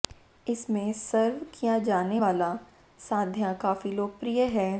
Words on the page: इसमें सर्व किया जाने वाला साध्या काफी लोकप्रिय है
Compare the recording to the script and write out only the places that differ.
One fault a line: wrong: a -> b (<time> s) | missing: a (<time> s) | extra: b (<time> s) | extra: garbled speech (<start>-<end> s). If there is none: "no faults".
no faults